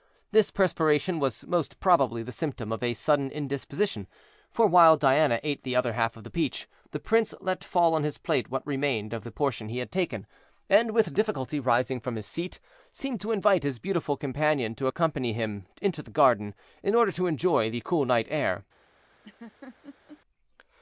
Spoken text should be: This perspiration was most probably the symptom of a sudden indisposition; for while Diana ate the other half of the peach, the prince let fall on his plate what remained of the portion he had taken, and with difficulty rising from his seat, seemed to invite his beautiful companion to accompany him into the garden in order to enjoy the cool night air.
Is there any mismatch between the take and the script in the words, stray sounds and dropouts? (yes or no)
yes